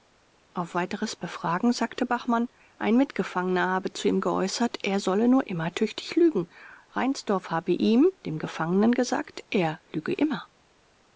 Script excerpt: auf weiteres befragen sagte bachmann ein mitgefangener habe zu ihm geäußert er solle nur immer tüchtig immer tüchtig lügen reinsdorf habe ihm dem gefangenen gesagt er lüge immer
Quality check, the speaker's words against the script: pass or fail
fail